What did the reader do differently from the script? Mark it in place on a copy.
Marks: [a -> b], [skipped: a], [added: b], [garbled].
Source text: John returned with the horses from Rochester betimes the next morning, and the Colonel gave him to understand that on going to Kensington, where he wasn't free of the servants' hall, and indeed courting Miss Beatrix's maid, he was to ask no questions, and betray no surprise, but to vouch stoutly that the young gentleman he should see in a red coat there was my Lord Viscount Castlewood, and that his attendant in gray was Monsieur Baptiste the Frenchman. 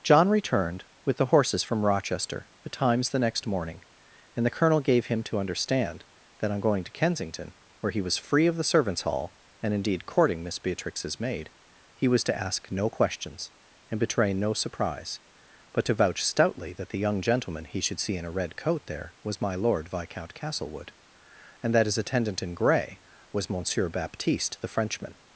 John returned with the horses from Rochester betimes the next morning, and the Colonel gave him to understand that on going to Kensington, where he [wasn't -> was] free of the servants' hall, and indeed courting Miss Beatrix's maid, he was to ask no questions, and betray no surprise, but to vouch stoutly that the young gentleman he should see in a red coat there was my Lord Viscount Castlewood, and that his attendant in gray was Monsieur Baptiste the Frenchman.